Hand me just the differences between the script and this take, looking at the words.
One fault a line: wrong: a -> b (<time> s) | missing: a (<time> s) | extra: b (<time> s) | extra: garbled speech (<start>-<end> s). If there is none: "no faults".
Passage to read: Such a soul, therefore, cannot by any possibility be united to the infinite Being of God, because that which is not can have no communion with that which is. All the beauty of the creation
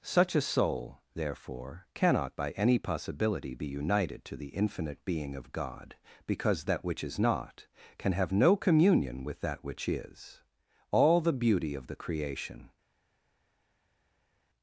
no faults